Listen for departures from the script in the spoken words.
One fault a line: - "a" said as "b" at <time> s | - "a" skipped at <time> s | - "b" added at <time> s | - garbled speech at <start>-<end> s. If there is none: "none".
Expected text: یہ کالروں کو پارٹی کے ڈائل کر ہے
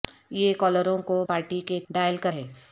none